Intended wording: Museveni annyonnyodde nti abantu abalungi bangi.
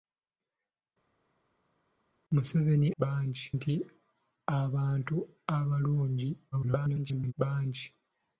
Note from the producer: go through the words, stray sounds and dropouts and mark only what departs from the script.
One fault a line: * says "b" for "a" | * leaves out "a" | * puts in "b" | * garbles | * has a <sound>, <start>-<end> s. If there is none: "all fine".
* says "bangi" for "annyonnyodde"
* garbles